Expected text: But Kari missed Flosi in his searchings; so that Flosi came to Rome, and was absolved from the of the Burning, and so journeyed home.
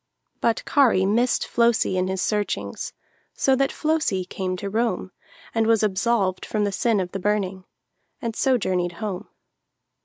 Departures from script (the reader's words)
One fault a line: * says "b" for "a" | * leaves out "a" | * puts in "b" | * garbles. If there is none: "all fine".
* puts in "sin"